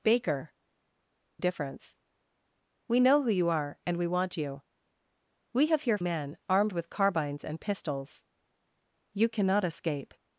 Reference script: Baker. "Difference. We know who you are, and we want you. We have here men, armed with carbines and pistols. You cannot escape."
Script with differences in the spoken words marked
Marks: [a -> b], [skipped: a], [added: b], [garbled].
Baker. "Difference. We know who you are, and we want you. We have here men, armed with carbines and pistols. You cannot escape."